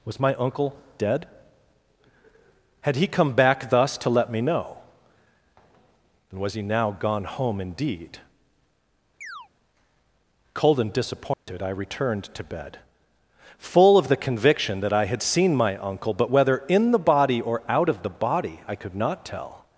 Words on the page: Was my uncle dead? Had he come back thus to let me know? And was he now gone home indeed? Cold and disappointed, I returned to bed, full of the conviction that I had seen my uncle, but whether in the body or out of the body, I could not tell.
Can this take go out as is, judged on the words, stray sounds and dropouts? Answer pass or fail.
fail